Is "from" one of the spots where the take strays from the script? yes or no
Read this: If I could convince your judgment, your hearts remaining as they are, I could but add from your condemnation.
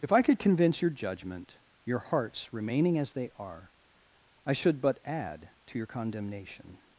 yes